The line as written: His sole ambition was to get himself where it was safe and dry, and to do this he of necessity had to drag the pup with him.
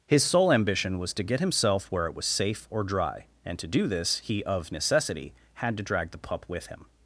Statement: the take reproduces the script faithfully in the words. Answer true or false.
false